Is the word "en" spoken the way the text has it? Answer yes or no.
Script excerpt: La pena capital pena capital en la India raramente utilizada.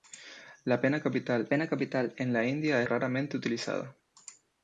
yes